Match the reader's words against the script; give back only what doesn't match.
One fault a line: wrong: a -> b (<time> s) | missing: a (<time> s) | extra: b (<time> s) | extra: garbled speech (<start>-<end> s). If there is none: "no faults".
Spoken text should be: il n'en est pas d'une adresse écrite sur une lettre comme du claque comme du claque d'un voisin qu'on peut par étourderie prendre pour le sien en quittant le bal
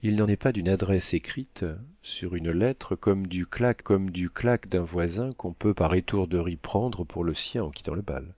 no faults